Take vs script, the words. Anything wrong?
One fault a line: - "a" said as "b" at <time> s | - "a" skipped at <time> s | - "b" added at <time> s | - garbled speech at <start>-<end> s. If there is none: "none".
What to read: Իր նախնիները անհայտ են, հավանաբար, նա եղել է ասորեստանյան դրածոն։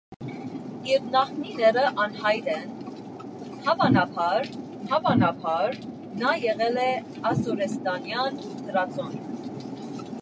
- "հավանաբար" added at 4.9 s